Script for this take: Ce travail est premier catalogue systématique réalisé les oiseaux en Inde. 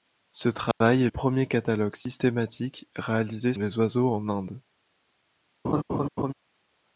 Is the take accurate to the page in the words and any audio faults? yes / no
no